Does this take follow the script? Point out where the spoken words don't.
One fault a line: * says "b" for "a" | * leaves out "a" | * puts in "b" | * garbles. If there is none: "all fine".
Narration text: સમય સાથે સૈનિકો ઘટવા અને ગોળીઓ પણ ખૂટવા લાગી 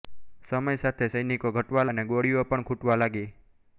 all fine